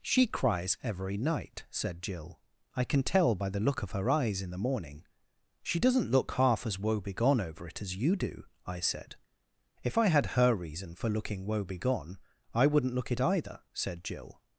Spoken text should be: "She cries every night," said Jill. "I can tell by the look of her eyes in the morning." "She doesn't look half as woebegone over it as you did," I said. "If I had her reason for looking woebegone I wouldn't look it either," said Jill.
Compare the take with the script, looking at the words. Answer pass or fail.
fail